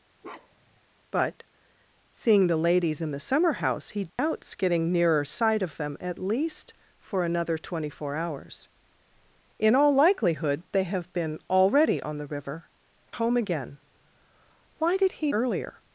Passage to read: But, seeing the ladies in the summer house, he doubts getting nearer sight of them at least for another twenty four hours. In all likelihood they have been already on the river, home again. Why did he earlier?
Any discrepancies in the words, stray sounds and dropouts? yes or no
yes